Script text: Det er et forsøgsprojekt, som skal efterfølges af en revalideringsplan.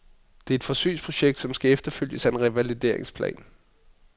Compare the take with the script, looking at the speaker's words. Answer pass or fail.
pass